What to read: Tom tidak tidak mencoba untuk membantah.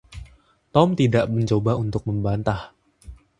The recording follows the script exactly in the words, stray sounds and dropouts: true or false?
false